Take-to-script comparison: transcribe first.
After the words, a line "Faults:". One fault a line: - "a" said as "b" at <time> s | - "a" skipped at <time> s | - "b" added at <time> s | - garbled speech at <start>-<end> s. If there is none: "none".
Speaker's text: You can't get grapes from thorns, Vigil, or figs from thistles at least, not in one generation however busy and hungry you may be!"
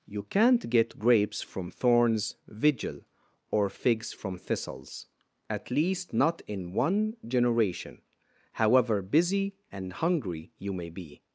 You can't get grapes from thorns, Vigil, or figs from thistles at least, not in one generation however busy and hungry you may be!"
Faults:
none